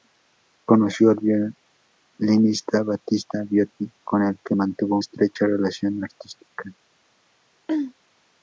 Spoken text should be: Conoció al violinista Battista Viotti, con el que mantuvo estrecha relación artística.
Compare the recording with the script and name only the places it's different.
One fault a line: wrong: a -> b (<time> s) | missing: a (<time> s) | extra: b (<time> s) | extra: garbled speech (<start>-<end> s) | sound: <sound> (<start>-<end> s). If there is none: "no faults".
sound: throat clearing (7.7-7.9 s)